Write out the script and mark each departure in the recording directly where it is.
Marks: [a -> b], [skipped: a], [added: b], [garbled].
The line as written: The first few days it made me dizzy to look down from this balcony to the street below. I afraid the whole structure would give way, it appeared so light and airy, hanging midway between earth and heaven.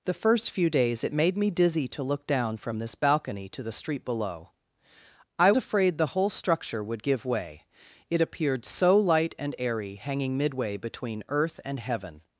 The first few days it made me dizzy to look down from this balcony to the street below. I afraid the whole structure would give way, it appeared so light and airy, hanging midway between earth and heaven.